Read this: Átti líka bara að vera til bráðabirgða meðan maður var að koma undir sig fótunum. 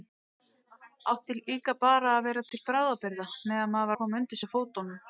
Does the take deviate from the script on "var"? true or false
true